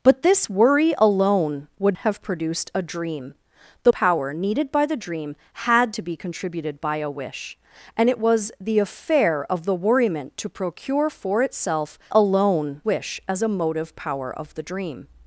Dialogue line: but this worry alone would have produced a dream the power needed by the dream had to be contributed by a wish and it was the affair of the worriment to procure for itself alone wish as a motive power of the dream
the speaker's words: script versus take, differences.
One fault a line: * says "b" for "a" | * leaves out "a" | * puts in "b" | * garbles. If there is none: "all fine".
all fine